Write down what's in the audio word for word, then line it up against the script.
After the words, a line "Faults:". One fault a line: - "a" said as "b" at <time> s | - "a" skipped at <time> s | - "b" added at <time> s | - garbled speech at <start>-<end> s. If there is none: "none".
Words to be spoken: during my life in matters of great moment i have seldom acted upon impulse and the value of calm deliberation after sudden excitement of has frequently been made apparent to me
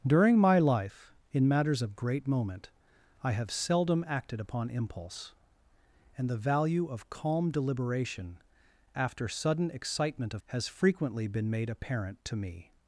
during my life in matters of great moment i have seldom acted upon impulse and the value of calm deliberation after sudden excitement of has frequently been made apparent to me
Faults:
none